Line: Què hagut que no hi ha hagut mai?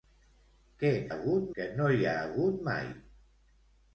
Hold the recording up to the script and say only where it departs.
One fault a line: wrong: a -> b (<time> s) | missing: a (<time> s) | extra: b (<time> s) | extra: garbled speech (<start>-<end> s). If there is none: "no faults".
no faults